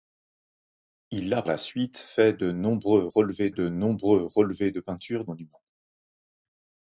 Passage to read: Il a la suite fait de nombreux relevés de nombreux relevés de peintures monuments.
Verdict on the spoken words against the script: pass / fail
pass